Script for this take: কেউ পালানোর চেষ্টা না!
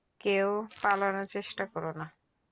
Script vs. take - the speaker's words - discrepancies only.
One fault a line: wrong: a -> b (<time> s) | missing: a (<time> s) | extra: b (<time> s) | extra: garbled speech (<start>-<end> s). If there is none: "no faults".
extra: করো (1.7 s)